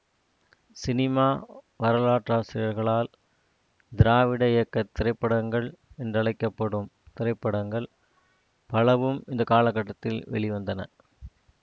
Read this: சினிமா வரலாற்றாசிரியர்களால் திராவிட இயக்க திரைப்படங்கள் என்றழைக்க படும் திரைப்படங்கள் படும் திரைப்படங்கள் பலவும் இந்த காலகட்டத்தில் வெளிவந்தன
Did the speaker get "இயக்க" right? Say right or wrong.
right